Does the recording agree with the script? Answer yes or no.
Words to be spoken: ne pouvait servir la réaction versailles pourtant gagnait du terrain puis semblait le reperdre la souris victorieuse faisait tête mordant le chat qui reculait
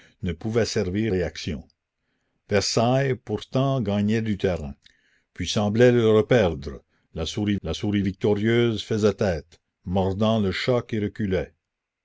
no